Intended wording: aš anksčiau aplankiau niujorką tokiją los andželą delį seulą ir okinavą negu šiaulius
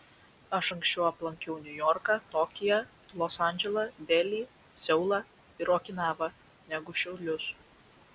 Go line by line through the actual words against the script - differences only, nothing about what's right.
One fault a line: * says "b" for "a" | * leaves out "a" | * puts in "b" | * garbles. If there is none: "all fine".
all fine